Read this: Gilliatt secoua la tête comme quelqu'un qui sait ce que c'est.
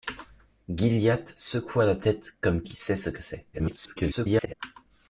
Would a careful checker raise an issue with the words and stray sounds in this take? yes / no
yes